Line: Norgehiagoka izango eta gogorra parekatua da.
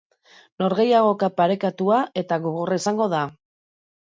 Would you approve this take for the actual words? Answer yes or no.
no